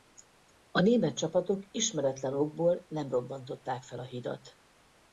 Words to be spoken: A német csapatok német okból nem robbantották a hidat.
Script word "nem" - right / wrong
right